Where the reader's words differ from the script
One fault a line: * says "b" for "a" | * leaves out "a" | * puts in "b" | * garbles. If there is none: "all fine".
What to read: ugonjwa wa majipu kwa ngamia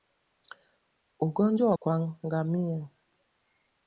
* leaves out "majipu"